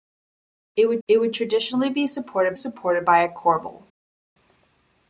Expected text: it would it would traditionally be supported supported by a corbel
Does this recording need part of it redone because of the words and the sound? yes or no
no